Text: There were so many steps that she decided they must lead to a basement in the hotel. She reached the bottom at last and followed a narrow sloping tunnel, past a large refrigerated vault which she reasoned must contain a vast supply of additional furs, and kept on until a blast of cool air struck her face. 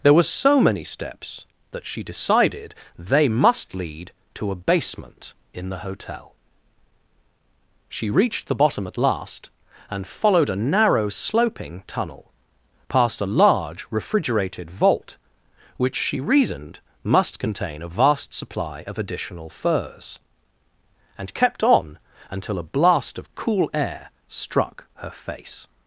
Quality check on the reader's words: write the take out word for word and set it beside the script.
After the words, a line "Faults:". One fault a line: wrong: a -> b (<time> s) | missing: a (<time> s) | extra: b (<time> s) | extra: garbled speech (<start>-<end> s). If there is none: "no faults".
There were so many steps that she decided they must lead to a basement in the hotel. She reached the bottom at last and followed a narrow sloping tunnel, past a large refrigerated vault which she reasoned must contain a vast supply of additional furs, and kept on until a blast of cool air struck her face.
Faults:
no faults